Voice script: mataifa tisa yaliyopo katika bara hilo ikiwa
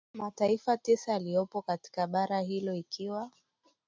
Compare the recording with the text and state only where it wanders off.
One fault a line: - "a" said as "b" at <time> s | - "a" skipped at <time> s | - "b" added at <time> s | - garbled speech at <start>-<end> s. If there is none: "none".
none